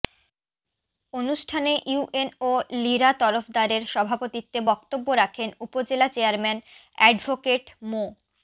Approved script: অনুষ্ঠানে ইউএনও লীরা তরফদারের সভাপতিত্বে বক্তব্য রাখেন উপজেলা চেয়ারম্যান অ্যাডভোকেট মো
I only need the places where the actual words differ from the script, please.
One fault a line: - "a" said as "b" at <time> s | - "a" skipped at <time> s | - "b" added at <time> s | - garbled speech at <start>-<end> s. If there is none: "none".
none